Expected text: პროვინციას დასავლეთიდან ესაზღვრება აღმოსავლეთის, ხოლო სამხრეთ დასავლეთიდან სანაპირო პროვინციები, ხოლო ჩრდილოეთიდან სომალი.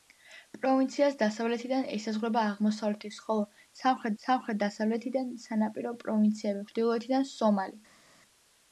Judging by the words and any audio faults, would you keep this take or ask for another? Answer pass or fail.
fail